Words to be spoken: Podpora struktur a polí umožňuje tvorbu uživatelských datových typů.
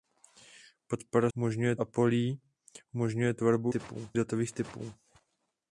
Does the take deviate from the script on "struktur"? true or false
true